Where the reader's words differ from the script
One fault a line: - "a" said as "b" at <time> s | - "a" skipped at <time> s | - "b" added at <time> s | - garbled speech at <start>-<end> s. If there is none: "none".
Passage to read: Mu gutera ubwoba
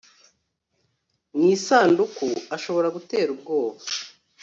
- "isanduku ashobora" added at 1.6 s